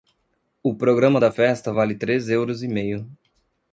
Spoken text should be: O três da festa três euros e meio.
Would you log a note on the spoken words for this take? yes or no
yes